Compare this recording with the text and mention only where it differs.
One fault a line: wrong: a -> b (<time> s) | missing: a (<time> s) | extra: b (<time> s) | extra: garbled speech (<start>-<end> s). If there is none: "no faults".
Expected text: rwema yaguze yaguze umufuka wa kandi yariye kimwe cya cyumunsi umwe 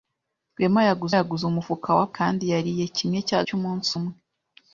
no faults